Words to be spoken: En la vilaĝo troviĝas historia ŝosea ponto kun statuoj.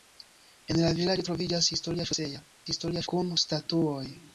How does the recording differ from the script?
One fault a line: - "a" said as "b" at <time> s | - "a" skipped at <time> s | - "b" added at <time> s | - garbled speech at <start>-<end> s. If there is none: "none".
- "ponto" said as "historia" at 2.7 s